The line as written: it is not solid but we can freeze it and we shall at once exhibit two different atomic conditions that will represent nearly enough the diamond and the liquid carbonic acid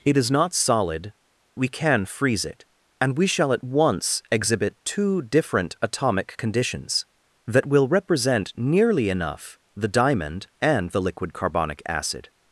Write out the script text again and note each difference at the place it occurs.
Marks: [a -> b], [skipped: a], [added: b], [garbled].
it is not solid [skipped: but] we can freeze it and we shall at once exhibit two different atomic conditions that will represent nearly enough the diamond and the liquid carbonic acid